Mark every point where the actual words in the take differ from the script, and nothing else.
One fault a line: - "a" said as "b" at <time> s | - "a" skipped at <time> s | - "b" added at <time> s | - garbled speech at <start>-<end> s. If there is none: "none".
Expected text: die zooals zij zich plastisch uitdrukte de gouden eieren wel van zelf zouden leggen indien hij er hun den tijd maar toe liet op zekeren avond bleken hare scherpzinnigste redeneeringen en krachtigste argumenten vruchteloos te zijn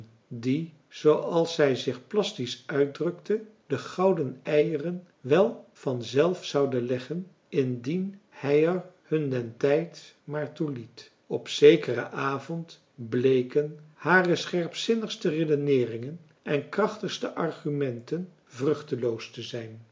none